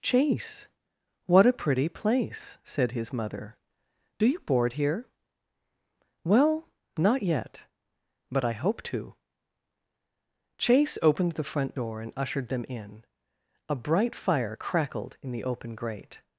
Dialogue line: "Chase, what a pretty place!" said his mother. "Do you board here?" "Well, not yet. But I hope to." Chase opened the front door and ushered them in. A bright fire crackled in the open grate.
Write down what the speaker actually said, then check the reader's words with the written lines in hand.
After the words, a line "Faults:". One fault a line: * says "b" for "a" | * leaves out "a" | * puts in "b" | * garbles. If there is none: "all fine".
"Chase, what a pretty place!" said his mother. "Do you board here?" "Well, not yet. But I hope to." Chase opened the front door and ushered them in. A bright fire crackled in the open grate.
Faults:
all fine